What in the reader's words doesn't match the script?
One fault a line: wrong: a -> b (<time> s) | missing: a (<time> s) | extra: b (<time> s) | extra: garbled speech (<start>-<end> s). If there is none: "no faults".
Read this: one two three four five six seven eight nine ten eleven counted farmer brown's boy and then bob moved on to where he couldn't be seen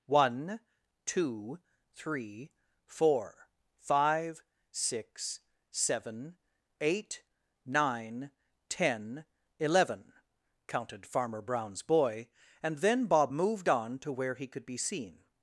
wrong: couldn't -> could (14.5 s)